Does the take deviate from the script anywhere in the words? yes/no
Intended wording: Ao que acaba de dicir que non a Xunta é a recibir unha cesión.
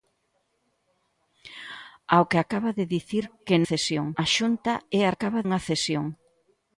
yes